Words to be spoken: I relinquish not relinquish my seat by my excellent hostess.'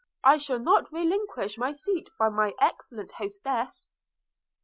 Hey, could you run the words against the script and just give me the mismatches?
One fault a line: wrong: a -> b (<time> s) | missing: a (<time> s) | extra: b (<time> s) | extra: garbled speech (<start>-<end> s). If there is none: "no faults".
wrong: relinquish -> shall (0.4 s)